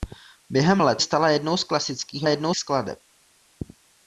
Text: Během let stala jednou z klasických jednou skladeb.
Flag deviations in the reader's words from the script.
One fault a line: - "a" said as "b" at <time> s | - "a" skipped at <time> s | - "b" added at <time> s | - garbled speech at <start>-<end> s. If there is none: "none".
none